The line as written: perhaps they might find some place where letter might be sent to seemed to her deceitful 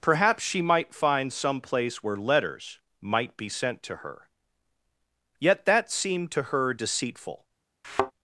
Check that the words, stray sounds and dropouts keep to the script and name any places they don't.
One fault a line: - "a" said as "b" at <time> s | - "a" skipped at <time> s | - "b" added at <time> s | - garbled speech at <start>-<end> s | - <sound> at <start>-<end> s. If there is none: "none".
- "they" said as "she" at 0.4 s
- "letter" said as "letters" at 2.2 s
- "her yet that" added at 4.0 s
- thud at 7.8-8.1 s